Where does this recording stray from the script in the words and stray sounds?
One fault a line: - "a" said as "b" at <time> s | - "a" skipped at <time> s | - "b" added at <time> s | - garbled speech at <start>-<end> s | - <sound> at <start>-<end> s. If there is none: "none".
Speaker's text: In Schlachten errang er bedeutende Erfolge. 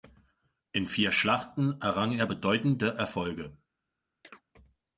- "vier" added at 0.9 s
- chirp at 4.2-4.4 s